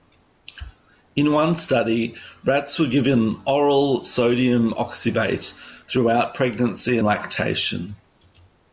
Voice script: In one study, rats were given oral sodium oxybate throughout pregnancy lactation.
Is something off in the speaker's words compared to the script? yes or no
no